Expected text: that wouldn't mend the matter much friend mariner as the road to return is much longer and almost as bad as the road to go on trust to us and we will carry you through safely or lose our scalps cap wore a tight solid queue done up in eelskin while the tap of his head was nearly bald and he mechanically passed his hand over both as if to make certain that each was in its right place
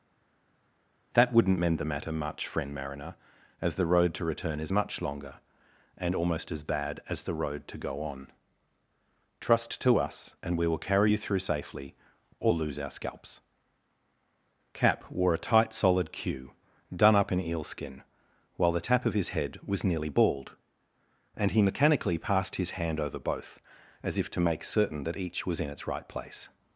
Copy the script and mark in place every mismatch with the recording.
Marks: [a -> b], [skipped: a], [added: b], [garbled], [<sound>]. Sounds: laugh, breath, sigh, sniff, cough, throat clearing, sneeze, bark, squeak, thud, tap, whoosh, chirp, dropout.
that wouldn't mend the matter much friend mariner as the road to return is much longer and almost as bad as the road to go on trust to us and we will carry you through safely or lose our scalps cap wore a tight solid queue done up in eelskin while the tap of his head was nearly bald and he mechanically passed his hand over both as if to make certain that each was in its right place